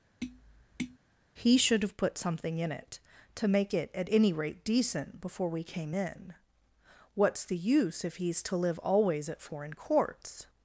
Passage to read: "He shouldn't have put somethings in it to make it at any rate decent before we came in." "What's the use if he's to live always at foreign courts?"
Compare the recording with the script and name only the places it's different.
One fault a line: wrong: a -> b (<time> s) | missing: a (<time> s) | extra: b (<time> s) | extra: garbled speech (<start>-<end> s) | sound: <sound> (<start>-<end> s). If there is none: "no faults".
sound: tap (0.2-1.0 s)
wrong: shouldn't -> should (1.6 s)
wrong: somethings -> something (2.2 s)